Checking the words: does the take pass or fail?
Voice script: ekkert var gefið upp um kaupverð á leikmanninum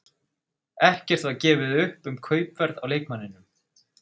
pass